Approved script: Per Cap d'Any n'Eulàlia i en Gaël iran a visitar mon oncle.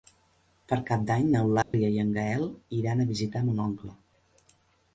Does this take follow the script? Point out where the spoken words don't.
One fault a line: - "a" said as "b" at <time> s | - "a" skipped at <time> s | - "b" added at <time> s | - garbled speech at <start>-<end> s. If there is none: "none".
none